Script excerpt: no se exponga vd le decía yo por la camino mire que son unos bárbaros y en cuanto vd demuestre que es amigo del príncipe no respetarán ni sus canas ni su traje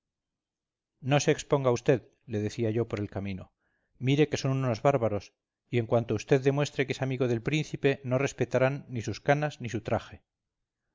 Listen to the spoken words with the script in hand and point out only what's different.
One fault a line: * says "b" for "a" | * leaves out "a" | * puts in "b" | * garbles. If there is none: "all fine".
* says "el" for "la"